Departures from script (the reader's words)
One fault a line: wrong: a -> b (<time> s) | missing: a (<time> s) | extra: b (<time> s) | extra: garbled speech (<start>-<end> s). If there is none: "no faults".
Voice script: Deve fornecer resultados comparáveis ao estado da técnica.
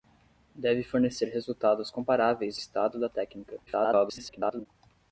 missing: ao (2.6 s)
extra: garbled speech (3.7-4.7 s)